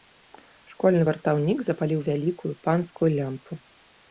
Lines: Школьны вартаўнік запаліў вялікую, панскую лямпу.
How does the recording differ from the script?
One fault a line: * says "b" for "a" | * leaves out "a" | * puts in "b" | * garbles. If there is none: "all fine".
all fine